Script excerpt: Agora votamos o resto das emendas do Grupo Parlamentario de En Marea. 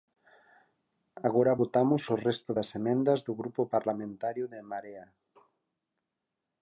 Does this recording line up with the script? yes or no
yes